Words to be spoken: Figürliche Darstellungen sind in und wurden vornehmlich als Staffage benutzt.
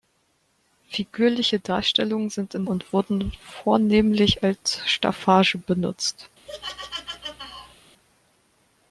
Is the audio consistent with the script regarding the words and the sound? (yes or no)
no